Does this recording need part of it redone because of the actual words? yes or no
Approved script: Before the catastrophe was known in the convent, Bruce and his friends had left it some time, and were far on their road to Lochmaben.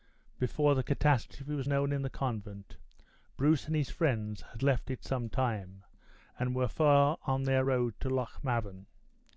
no